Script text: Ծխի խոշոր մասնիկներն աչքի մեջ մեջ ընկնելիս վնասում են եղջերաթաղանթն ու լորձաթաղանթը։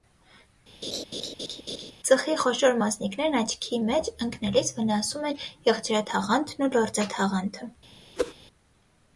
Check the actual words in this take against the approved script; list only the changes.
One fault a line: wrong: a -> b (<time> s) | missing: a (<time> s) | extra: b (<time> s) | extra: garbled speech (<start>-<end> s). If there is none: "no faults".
missing: մեջ (4.1 s)